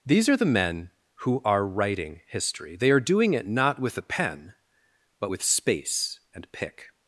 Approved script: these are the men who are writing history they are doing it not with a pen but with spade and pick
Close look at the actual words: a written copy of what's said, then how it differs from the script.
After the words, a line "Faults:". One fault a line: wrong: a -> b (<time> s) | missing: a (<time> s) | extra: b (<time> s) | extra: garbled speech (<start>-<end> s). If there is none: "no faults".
these are the men who are writing history they are doing it not with a pen but with space and pick
Faults:
wrong: spade -> space (5.4 s)